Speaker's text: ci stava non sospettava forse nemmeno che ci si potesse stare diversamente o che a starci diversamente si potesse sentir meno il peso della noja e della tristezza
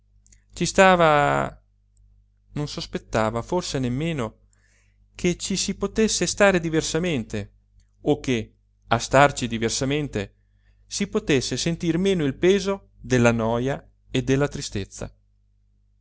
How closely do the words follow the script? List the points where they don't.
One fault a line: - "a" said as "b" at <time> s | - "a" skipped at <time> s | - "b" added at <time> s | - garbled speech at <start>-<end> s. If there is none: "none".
none